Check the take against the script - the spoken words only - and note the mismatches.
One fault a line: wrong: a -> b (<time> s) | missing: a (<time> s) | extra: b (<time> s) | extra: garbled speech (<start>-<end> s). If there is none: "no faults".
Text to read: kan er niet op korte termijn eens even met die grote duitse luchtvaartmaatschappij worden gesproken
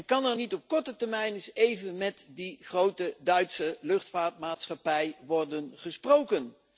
no faults